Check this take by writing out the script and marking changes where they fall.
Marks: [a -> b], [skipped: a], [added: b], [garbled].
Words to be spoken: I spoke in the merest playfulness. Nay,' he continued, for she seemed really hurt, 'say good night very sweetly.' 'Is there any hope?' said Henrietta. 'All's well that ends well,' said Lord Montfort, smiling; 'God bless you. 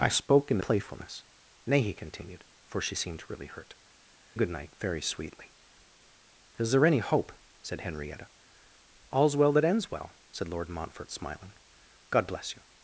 I spoke in the [skipped: merest] playfulness. Nay,' he continued, for she seemed really hurt, [skipped: 'say] good night very sweetly.' 'Is there any hope?' said Henrietta. 'All's well that ends well,' said Lord Montfort, smiling; 'God bless you.